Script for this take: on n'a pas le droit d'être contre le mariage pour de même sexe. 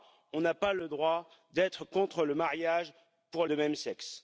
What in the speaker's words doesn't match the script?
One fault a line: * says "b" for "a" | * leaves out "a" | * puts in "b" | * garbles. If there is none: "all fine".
all fine